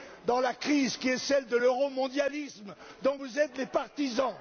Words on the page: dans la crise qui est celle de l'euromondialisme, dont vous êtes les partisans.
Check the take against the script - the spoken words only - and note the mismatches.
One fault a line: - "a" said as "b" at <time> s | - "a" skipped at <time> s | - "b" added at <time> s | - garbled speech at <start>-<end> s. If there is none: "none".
none